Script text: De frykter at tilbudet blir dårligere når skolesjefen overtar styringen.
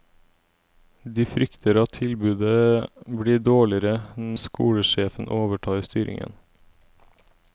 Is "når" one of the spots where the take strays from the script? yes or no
yes